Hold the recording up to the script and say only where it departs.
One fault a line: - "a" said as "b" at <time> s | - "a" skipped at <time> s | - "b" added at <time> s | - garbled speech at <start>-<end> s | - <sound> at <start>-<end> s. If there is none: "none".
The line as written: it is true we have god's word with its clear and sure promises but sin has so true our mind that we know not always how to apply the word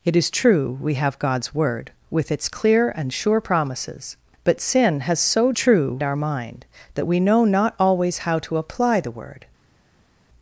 none